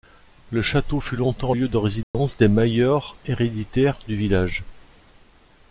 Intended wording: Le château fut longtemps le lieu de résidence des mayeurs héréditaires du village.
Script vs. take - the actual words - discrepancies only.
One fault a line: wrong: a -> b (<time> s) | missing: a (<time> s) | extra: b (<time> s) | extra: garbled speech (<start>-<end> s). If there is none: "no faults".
missing: le (1.5 s)